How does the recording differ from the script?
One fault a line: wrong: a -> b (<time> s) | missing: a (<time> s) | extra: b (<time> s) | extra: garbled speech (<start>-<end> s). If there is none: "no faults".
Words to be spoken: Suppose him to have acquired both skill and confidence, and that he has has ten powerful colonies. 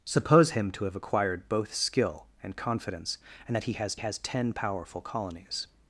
no faults